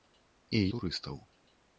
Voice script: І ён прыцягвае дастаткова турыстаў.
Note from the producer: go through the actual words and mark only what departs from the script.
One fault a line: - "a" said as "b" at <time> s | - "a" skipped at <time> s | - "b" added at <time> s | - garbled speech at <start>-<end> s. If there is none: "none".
- "ён прыцягвае дастаткова" skipped at 0.6 s